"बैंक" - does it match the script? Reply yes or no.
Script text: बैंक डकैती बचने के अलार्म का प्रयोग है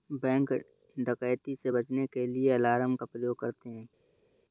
yes